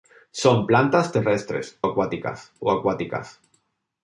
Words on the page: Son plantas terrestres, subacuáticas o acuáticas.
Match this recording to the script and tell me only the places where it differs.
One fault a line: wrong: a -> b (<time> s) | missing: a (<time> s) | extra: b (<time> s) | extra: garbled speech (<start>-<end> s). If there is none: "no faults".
wrong: subacuáticas -> acuáticas (1.8 s)